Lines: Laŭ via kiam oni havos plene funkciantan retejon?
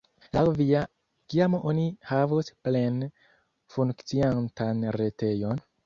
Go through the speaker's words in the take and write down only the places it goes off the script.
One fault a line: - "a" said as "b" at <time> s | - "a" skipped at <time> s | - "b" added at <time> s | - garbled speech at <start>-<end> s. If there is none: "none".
none